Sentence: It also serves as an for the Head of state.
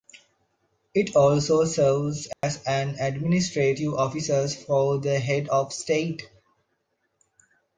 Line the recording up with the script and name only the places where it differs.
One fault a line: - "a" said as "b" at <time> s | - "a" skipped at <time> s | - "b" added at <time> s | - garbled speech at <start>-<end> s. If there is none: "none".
- "administrative office" added at 3.0 s